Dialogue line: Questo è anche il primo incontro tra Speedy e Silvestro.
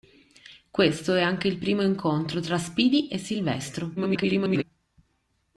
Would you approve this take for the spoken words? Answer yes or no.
no